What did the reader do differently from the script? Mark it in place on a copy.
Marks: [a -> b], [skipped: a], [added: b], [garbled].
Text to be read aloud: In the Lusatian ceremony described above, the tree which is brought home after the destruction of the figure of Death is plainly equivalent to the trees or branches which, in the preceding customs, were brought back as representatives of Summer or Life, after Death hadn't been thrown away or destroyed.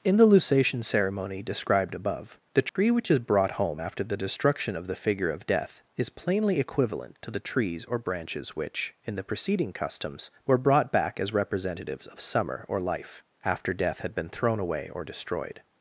In the Lusatian ceremony described above, the tree which is brought home after the destruction of the figure of Death is plainly equivalent to the trees or branches which, in the preceding customs, were brought back as representatives of Summer or Life, after Death [hadn't -> had] been thrown away or destroyed.